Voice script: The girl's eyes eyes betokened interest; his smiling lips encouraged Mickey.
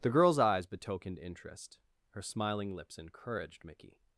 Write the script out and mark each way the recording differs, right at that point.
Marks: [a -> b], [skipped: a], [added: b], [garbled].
The girl's eyes [skipped: eyes] betokened interest; [his -> her] smiling lips encouraged Mickey.